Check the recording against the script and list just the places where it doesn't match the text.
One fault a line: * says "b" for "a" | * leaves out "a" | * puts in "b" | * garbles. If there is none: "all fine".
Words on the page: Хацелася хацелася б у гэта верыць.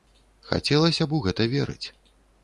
* leaves out "хацелася"